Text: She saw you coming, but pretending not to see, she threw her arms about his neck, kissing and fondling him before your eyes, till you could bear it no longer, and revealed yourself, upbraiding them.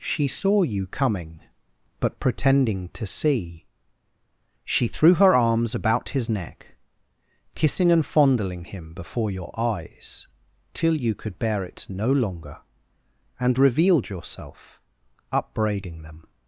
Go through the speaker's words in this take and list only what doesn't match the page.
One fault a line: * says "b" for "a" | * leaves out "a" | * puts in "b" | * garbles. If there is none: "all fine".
* leaves out "not"